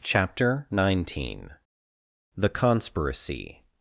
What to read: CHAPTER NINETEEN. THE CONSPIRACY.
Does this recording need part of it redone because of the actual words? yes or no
no